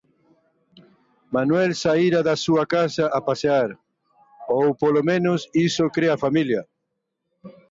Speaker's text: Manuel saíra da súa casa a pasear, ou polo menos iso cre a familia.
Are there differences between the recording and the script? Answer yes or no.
no